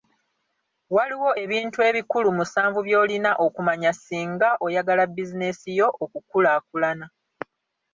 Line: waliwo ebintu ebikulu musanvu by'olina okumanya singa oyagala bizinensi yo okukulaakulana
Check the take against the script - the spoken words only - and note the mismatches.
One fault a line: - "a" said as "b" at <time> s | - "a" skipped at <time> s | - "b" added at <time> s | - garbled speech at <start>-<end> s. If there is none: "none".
none